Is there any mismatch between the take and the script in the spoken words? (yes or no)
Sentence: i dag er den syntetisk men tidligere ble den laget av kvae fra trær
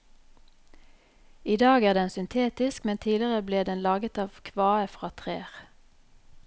no